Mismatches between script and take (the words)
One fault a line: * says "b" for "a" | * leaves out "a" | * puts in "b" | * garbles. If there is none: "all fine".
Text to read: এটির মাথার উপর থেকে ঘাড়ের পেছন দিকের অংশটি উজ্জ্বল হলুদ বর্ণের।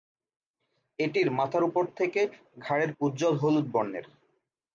* leaves out "পেছন দিকের অংশটি"